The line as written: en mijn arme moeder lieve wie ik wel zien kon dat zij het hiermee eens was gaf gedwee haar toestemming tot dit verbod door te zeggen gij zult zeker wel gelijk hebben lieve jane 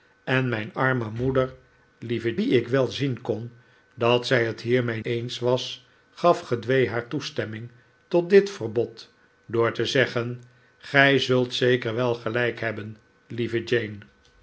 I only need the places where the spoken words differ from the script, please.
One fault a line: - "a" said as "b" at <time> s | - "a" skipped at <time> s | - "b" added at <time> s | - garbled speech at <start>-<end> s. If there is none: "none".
none